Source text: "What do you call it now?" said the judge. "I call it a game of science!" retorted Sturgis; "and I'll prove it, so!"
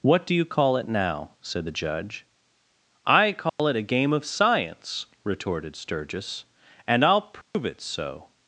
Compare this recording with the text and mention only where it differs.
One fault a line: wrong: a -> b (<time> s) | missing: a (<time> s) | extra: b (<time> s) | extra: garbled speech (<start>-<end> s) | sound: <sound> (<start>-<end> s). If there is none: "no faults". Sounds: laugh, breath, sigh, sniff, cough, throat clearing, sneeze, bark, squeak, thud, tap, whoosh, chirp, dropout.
sound: dropout (3.5-3.6 s)
sound: dropout (7.4-7.5 s)